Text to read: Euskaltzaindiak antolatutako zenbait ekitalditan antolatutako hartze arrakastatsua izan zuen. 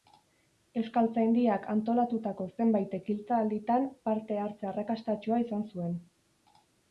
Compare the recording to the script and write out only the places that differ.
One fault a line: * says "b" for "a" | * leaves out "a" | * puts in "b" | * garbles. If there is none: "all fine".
* says "parte" for "antolatutako"